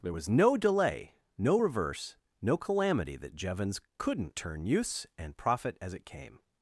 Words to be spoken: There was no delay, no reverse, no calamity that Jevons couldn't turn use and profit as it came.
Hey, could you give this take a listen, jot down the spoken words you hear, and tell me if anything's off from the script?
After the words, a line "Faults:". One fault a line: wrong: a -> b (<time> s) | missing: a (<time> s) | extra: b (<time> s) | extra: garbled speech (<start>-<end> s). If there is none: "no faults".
There was no delay, no reverse, no calamity that Jevons couldn't turn use and profit as it came.
Faults:
no faults